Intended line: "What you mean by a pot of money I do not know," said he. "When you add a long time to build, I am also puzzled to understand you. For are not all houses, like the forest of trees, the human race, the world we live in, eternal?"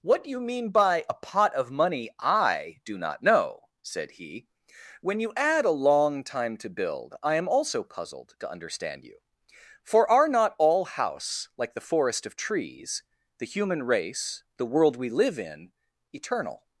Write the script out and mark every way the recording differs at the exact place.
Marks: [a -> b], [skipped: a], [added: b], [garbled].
"What you mean by a pot of money I do not know," said he. "When you add a long time to build, I am also puzzled to understand you. For are not all [houses, -> house] like the forest of trees, the human race, the world we live in, eternal?"